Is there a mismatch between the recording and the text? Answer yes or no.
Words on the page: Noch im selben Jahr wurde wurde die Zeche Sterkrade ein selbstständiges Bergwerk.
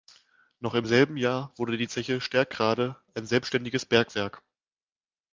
yes